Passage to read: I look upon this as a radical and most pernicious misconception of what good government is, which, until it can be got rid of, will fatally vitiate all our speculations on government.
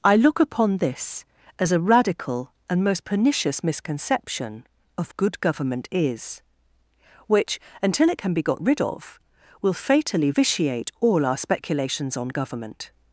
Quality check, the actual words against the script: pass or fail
fail